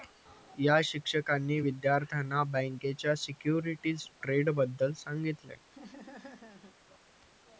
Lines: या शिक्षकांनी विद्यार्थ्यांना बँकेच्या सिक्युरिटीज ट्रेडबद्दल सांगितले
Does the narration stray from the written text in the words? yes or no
no